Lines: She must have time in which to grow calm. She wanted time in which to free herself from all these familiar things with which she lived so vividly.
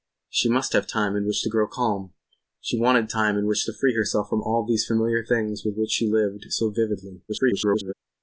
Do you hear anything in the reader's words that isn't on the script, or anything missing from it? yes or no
yes